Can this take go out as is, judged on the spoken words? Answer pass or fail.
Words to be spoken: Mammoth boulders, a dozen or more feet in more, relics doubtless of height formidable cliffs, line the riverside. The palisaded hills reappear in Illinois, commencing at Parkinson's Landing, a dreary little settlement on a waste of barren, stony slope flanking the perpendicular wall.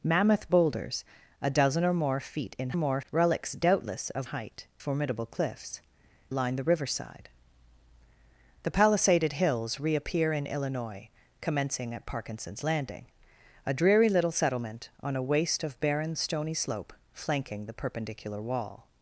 pass